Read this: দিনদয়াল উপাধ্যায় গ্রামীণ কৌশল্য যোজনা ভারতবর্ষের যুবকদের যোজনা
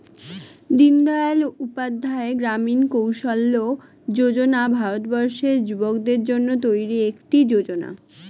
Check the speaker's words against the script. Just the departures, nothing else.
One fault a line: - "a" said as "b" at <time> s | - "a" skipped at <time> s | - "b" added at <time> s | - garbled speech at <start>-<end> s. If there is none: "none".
- "জন্য তৈরি একটি" added at 6.3 s